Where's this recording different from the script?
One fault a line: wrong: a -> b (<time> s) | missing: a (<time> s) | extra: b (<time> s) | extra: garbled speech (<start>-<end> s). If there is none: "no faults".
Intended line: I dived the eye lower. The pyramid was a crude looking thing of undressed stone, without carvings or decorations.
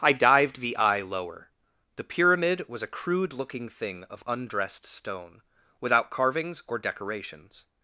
no faults